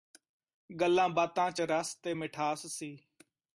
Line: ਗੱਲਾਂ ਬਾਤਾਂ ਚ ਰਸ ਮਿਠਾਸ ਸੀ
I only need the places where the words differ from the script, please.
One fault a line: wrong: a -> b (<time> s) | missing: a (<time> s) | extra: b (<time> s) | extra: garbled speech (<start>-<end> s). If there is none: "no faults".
extra: ਤੇ (1.9 s)